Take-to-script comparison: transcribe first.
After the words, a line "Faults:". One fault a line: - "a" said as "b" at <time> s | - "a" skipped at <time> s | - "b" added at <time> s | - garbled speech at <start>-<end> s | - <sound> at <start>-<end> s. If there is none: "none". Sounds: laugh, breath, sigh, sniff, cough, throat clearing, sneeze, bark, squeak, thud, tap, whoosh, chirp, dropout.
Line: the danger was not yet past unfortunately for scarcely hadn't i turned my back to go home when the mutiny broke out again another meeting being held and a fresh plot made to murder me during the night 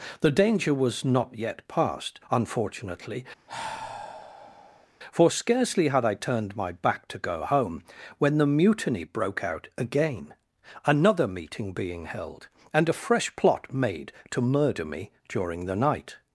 the danger was not yet past unfortunately for scarcely had i turned my back to go home when the mutiny broke out again another meeting being held and a fresh plot made to murder me during the night
Faults:
- sigh at 3.5-4.9 s
- "hadn't" said as "had" at 5.9 s